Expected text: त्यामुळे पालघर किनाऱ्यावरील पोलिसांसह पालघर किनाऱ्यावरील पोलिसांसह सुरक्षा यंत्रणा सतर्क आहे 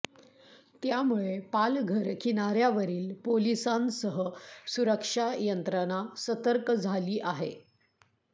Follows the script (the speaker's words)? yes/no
no